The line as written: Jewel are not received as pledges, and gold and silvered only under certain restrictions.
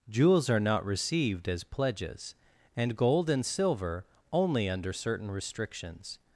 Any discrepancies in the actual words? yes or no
yes